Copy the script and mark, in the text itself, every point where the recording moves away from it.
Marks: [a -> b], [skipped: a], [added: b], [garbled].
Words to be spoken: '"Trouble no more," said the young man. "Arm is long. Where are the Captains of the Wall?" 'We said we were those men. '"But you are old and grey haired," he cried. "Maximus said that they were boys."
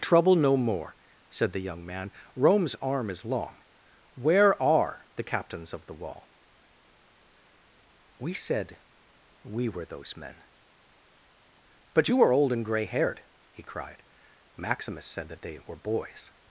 '"Trouble no more," said the young man. [added: Rome's] "Arm is long. Where are the Captains of the Wall?" 'We said we were those men. '"But you are old and grey haired," he cried. "Maximus said that they were boys."